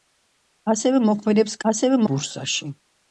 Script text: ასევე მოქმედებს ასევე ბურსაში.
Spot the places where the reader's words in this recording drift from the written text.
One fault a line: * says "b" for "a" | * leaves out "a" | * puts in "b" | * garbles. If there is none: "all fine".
all fine